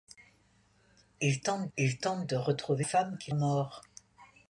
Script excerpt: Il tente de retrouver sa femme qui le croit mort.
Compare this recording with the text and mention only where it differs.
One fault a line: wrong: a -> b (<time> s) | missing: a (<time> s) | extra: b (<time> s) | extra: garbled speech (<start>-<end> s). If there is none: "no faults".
extra: il tente (1.8 s)
missing: sa (2.8 s)
missing: le croit (3.3 s)